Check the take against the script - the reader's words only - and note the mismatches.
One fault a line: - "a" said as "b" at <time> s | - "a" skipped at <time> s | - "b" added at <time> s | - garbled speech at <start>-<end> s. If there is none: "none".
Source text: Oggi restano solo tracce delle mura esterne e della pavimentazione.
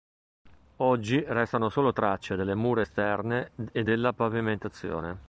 none